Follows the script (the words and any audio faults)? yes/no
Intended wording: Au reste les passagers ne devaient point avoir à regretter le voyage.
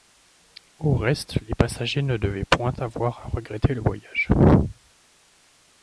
yes